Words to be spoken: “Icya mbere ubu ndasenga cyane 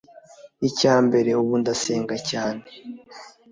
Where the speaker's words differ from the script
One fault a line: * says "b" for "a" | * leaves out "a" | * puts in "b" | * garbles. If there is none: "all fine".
all fine